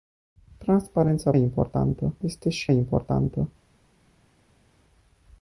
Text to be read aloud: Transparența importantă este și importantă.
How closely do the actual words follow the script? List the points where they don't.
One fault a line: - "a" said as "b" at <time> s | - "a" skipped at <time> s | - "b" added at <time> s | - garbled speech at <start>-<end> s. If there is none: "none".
none